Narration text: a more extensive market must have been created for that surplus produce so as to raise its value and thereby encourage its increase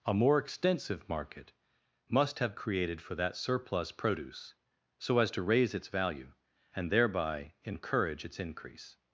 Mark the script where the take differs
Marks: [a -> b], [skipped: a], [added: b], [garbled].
a more extensive market must have [skipped: been] created for that surplus produce so as to raise its value and thereby encourage its increase